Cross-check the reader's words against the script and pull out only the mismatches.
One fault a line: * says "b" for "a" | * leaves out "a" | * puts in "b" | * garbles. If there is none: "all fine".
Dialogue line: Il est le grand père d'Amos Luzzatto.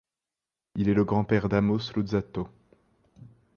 all fine